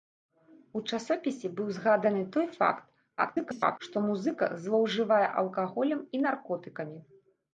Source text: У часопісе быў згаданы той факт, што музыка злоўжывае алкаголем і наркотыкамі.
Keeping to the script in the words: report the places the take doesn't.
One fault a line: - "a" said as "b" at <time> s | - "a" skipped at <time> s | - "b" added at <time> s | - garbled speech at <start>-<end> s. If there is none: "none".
- garbled speech at 3.2-3.8 s